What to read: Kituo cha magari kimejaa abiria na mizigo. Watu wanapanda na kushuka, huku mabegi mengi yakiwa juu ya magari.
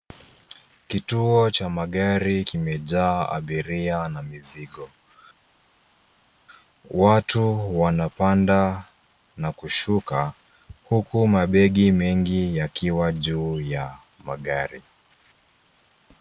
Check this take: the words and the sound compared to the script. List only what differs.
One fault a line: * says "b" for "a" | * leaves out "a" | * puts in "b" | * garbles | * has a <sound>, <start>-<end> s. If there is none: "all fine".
all fine